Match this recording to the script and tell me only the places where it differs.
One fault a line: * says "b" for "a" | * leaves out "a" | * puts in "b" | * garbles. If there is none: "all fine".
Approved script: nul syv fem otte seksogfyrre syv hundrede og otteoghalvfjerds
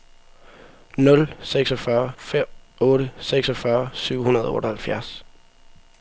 * says "seksogfyrre" for "syv"